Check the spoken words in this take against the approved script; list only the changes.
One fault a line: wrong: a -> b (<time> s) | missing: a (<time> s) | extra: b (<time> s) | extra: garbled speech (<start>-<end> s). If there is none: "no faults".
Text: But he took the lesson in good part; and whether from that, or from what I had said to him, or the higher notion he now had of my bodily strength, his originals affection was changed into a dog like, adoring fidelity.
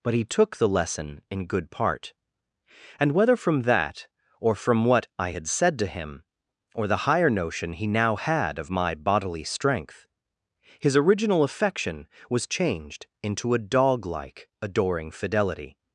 wrong: originals -> original (11.0 s)